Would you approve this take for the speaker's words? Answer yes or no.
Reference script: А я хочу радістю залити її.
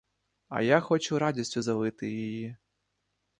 yes